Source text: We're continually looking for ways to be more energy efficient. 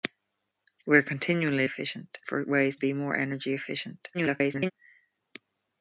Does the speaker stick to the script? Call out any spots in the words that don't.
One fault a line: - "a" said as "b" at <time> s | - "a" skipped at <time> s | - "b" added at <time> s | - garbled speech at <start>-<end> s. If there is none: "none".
- "looking" said as "efficient" at 1.6 s
- "to" skipped at 2.8 s
- garbled speech at 4.1-4.7 s